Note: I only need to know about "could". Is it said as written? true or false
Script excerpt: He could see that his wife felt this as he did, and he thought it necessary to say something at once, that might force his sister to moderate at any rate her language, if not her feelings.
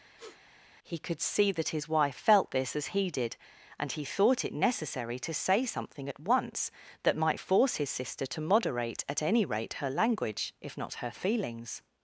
true